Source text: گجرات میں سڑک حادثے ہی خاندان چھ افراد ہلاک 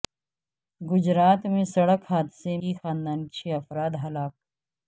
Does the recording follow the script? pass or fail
pass